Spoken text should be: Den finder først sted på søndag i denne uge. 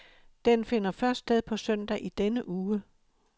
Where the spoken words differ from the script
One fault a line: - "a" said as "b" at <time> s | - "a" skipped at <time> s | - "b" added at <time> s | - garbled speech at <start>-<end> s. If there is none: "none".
none